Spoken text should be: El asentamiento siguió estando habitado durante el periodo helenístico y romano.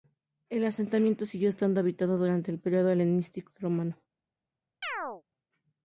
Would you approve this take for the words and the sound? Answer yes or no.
no